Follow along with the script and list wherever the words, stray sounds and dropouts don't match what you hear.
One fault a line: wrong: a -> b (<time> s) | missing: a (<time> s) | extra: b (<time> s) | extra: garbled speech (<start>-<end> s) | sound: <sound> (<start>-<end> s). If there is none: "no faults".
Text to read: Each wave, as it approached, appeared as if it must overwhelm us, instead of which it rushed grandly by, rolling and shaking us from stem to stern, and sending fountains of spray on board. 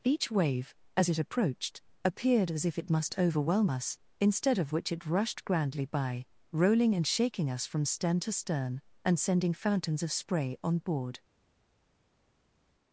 no faults